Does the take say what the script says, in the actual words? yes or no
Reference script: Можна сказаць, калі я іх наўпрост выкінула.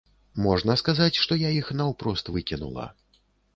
no